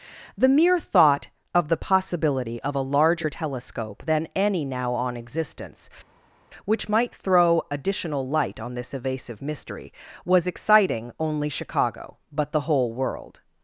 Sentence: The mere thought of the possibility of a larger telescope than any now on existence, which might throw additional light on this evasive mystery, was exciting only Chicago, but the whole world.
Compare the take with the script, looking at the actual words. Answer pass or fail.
pass